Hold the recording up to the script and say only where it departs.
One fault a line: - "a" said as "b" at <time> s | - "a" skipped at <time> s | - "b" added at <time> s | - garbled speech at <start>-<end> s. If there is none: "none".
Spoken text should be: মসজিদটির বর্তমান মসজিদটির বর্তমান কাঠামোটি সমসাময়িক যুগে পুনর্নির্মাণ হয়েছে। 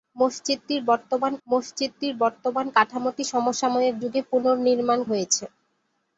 none